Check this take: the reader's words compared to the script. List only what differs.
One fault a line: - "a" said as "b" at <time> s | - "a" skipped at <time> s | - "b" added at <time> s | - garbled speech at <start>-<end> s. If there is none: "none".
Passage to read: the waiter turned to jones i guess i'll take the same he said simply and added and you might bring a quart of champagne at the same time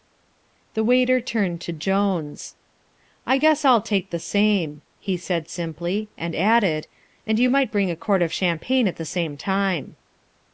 none